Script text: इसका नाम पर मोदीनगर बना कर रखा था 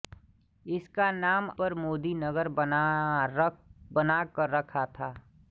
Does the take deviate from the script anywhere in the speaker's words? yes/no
no